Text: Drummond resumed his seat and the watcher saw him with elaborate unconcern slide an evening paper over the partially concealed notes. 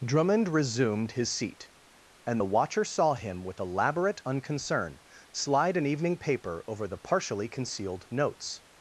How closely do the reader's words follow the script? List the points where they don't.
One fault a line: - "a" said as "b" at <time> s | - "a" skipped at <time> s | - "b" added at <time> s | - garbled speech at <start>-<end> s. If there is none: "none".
none